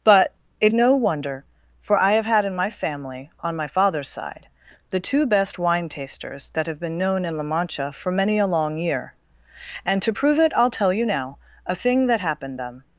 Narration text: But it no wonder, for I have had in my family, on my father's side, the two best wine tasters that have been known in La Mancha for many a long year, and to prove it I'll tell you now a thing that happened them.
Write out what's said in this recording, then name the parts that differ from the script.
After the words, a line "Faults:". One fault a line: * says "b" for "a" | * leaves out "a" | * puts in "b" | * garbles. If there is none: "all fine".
But it no wonder, for I have had in my family, on my father's side, the two best wine tasters that have been known in La Mancha for many a long year, and to prove it I'll tell you now a thing that happened them.
Faults:
all fine